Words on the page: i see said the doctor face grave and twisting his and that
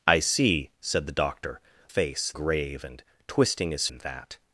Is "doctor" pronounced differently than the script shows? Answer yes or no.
no